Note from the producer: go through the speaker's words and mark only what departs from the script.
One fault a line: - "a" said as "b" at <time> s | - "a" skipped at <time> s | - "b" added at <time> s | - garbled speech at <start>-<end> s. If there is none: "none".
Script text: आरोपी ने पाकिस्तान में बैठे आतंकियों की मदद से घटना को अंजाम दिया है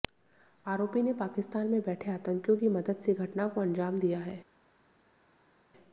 none